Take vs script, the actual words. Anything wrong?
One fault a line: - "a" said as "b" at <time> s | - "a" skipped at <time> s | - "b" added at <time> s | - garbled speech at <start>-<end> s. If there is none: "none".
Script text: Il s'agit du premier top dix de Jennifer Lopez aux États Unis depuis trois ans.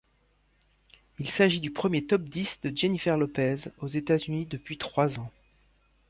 none